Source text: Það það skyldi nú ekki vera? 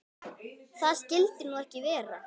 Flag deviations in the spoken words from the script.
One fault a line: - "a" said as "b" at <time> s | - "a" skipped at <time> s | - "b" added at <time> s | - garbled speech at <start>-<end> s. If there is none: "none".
- "það" skipped at 1.0 s